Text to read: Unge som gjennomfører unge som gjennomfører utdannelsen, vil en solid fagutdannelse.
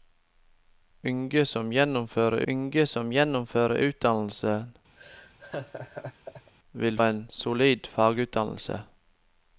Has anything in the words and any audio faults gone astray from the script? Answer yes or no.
yes